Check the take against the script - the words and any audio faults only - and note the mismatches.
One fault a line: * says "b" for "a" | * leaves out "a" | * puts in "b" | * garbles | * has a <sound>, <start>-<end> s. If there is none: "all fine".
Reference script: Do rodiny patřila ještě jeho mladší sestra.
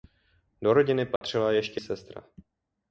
* has a dropout, 1.2-1.2 s
* leaves out "jeho mladší"